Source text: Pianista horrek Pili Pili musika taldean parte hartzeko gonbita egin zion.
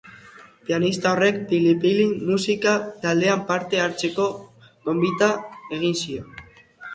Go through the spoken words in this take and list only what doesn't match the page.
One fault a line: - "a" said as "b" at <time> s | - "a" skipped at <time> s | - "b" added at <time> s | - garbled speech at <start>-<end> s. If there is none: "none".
none